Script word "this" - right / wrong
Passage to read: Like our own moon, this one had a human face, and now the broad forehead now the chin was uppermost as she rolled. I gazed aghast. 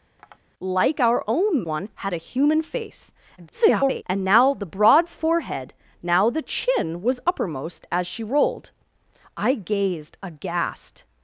wrong